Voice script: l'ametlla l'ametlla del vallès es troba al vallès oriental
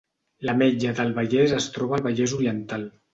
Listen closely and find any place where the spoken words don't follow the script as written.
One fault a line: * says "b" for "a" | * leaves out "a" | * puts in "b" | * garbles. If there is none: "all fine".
* leaves out "l'ametlla"